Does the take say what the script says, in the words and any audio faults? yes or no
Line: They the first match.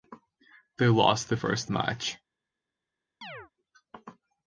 no